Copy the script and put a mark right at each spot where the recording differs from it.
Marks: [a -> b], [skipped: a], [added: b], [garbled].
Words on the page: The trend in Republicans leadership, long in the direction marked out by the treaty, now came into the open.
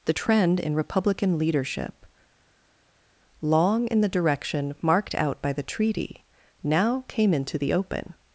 The trend in [Republicans -> Republican] leadership, long in the direction marked out by the treaty, now came into the open.